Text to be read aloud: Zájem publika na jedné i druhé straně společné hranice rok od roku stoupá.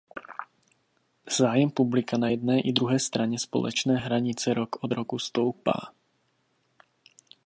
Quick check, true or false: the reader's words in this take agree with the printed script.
true